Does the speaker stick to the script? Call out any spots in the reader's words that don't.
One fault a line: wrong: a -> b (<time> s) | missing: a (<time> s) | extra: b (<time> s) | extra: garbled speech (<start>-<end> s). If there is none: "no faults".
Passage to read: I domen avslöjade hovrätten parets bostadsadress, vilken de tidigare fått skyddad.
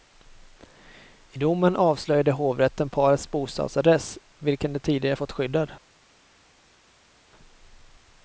no faults